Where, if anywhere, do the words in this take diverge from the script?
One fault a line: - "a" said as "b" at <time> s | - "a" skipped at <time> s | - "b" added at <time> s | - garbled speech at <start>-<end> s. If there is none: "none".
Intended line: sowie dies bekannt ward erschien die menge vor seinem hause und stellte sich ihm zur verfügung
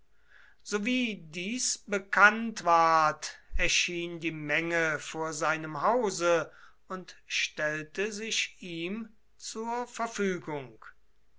none